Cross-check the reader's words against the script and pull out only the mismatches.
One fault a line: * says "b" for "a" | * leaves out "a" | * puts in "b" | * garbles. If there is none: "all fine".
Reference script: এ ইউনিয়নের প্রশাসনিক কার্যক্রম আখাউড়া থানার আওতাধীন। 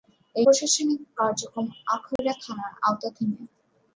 * leaves out "ইউনিয়নের"